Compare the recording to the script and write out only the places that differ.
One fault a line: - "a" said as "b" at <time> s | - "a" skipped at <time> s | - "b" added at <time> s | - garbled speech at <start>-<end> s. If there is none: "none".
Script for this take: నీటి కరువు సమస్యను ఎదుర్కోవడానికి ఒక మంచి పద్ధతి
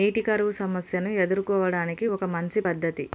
none